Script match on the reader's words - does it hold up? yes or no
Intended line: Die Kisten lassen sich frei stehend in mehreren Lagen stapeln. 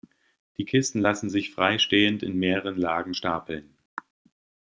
yes